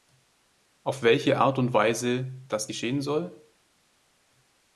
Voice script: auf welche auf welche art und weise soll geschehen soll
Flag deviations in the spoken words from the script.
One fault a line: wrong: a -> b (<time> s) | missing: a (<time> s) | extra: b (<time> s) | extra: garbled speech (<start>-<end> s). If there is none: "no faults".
missing: auf welche (1.4 s)
wrong: soll -> das (2.5 s)